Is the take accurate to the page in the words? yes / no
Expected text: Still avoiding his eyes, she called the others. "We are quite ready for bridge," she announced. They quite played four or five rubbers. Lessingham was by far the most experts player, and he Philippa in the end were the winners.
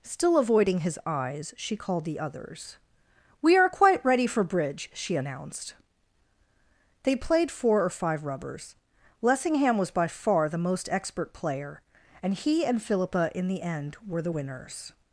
no